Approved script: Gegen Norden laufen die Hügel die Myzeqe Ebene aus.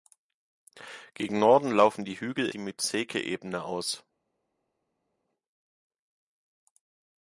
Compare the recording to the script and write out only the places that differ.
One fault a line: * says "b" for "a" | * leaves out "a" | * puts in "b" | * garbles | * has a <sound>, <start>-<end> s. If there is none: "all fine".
all fine